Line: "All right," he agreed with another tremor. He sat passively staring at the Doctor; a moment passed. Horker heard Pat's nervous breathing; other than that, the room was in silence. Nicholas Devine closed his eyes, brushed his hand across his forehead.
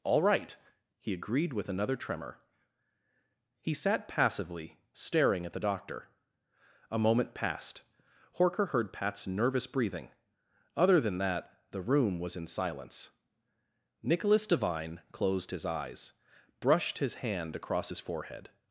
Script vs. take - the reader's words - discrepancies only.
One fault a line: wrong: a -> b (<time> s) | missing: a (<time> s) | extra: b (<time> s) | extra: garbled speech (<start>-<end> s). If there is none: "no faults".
no faults